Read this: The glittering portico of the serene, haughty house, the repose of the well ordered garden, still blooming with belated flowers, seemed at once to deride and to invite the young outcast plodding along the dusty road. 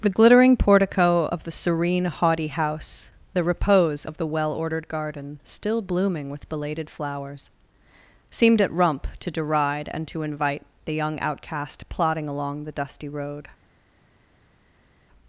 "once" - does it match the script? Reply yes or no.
no